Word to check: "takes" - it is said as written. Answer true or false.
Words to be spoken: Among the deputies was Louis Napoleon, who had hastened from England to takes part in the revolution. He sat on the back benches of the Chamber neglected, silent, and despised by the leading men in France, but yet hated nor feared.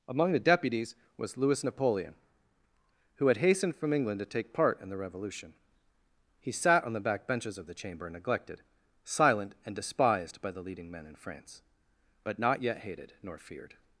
false